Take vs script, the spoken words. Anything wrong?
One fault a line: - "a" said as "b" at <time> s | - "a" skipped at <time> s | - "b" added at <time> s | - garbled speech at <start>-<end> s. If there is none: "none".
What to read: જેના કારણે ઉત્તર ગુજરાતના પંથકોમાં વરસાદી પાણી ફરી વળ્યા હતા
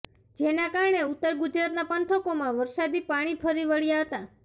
none